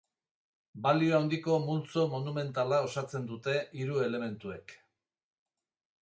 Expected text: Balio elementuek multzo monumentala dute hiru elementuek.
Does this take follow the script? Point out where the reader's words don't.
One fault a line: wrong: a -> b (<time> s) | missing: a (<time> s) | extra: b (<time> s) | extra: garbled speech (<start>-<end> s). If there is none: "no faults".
wrong: elementuek -> handiko (1.2 s)
extra: osatzen (2.9 s)